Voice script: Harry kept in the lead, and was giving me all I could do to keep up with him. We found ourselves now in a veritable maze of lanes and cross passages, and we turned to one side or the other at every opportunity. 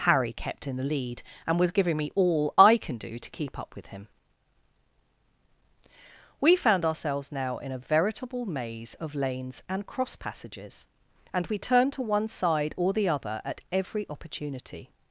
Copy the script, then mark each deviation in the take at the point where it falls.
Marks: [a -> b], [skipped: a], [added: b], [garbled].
Harry kept in the lead, and was giving me all I [could -> can] do to keep up with him. We found ourselves now in a veritable maze of lanes and cross passages, and we turned to one side or the other at every opportunity.